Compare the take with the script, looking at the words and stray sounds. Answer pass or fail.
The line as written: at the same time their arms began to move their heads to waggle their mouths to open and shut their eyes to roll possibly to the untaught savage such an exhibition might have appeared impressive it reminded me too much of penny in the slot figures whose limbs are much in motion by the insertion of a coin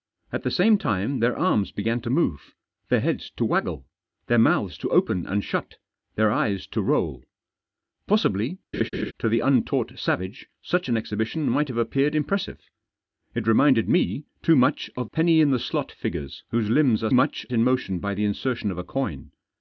fail